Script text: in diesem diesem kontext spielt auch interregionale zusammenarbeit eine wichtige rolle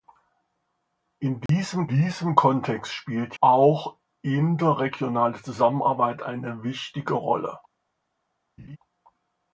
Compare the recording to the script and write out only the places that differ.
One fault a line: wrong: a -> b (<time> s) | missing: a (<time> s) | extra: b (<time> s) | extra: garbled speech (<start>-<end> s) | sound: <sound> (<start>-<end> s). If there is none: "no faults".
sound: dropout (1.5-1.5 s)
sound: laugh (8.6-8.8 s)